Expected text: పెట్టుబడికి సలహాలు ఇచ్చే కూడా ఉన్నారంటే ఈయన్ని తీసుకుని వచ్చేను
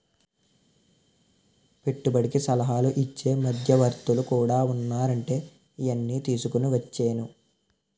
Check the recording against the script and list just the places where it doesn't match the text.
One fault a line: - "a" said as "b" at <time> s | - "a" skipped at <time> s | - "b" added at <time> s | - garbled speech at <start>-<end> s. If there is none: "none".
- "మధ్యవర్తులు" added at 3.3 s